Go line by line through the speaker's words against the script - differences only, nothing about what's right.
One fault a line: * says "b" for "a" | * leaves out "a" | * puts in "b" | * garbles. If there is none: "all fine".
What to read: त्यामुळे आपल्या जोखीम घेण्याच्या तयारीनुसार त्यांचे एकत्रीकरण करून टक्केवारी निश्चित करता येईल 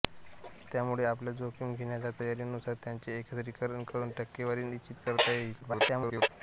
* garbles